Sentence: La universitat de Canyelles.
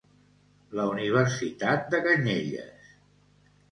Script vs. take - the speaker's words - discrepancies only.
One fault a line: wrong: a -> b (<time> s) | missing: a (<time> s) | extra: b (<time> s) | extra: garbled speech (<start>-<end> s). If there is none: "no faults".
no faults